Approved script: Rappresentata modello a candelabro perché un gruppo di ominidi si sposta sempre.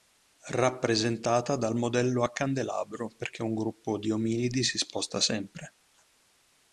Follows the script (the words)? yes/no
no